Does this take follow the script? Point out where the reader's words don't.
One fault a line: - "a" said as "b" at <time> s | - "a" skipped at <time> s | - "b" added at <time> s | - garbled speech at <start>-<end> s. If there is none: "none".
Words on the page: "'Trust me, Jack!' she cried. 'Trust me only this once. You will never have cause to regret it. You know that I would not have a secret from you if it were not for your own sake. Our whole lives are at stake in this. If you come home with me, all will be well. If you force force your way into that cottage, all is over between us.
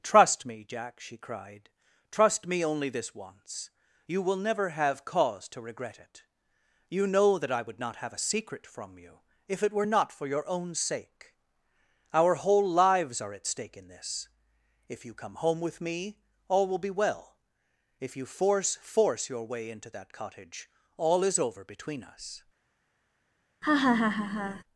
none